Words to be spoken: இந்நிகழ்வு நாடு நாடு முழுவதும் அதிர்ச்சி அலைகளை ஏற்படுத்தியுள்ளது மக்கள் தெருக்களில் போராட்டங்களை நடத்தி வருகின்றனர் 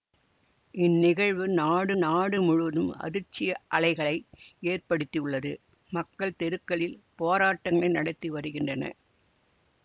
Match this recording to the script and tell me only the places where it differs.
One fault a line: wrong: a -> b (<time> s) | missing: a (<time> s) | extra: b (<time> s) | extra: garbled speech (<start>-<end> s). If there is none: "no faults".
no faults